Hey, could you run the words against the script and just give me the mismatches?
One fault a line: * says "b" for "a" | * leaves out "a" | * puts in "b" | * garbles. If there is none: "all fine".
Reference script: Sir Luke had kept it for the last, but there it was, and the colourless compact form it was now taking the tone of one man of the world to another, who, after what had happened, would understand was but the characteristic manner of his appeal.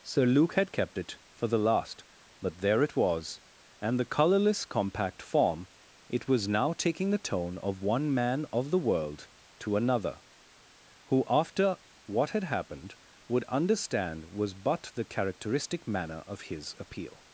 all fine